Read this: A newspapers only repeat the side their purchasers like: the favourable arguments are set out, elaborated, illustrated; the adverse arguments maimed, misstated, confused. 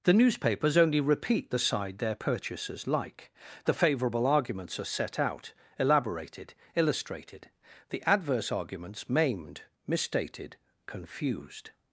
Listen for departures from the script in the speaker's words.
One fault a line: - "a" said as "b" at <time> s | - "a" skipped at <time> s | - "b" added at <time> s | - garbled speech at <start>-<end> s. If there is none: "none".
- "A" said as "The" at 0.0 s